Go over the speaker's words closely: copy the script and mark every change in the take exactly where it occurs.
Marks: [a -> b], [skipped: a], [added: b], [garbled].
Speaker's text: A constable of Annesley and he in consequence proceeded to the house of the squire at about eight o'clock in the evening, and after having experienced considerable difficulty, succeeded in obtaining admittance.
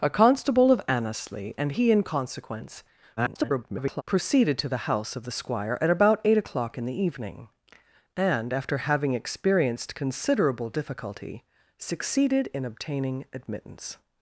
A constable of Annesley and he in consequence [garbled] proceeded to the house of the squire at about eight o'clock in the evening, and after having experienced considerable difficulty, succeeded in obtaining admittance.